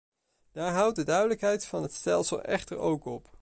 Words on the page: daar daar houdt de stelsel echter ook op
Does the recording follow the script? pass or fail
fail